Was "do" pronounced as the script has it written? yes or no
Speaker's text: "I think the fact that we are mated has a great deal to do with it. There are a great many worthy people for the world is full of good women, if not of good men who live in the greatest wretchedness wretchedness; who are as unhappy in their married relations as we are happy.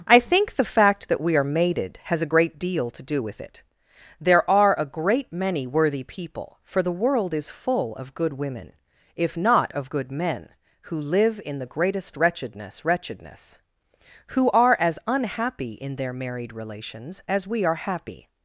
yes